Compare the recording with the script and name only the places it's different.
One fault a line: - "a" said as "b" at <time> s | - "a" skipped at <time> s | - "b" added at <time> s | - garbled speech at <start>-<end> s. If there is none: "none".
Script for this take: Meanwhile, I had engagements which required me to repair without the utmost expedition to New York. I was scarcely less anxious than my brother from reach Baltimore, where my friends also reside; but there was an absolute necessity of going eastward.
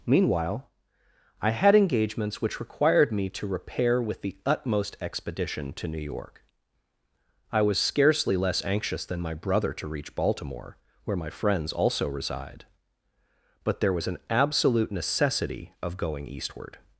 - "without" said as "with" at 4.0 s
- "from" said as "to" at 9.7 s